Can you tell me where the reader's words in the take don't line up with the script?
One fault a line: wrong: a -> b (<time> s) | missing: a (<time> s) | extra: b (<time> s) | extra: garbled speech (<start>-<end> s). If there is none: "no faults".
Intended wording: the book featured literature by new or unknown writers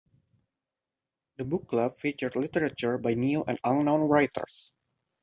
extra: club (1.7 s)
wrong: or -> and (3.5 s)